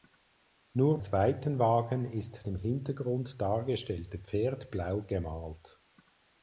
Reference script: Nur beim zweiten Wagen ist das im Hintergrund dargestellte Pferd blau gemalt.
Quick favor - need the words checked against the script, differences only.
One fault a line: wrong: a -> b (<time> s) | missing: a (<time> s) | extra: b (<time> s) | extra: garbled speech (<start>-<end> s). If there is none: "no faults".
missing: beim (1.0 s)
missing: das (2.5 s)